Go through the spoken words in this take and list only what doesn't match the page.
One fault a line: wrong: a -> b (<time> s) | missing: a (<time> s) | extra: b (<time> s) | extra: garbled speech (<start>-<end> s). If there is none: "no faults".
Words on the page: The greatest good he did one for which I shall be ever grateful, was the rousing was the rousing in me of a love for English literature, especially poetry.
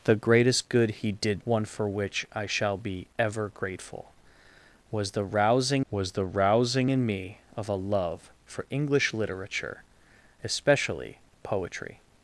no faults